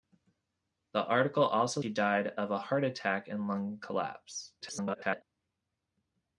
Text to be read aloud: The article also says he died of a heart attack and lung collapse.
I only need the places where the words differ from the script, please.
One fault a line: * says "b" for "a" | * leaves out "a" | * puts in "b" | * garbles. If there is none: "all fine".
* leaves out "says"
* garbles